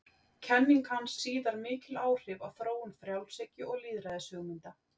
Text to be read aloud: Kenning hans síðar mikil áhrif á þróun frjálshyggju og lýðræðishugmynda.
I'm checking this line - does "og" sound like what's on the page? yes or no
yes